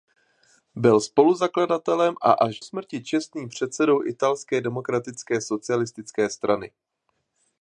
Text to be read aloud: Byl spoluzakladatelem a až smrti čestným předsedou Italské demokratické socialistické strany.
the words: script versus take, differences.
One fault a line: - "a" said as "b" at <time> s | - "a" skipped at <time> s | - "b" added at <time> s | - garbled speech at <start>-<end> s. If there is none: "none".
none